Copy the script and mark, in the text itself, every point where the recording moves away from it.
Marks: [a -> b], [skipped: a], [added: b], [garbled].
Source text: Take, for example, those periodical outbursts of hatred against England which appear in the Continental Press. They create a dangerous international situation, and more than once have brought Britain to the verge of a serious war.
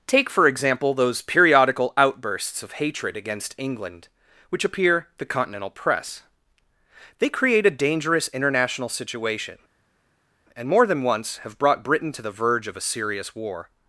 Take, for example, those periodical outbursts of hatred against England which appear [skipped: in] the Continental Press. They create a dangerous international situation, and more than once have brought Britain to the verge of a serious war.